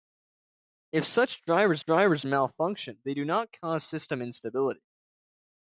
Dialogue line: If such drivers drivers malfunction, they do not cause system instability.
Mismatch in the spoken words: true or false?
false